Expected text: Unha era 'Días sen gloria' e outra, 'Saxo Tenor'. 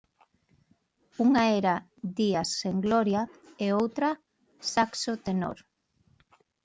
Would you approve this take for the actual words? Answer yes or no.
yes